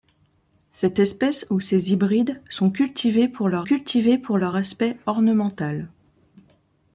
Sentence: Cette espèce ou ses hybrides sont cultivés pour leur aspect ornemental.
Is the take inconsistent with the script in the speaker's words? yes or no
yes